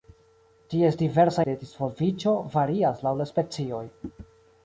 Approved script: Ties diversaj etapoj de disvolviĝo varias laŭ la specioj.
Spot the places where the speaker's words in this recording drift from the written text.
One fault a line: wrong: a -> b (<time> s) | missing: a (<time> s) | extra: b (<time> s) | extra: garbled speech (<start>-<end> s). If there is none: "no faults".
missing: etapoj (1.4 s)